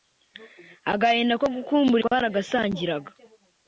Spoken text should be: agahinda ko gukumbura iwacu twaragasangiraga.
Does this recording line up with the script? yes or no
no